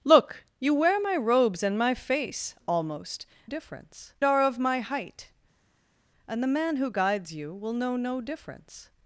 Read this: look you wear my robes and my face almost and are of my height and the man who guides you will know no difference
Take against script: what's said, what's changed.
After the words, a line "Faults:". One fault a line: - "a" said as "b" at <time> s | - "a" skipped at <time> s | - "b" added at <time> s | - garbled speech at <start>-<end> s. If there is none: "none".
look you wear my robes and my face almost difference are of my height and the man who guides you will know no difference
Faults:
- "and" said as "difference" at 3.4 s